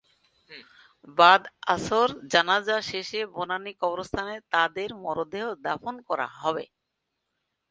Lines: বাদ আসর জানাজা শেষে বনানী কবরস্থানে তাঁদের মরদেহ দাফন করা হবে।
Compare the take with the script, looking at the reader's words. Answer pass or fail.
pass